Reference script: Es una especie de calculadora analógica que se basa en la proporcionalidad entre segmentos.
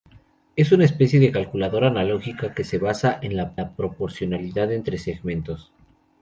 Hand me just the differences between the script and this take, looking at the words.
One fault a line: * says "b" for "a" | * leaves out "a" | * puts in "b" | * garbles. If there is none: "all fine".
* puts in "la"